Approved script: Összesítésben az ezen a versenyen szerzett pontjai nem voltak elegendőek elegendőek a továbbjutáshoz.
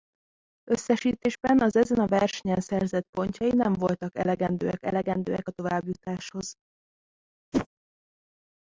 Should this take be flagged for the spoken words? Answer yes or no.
no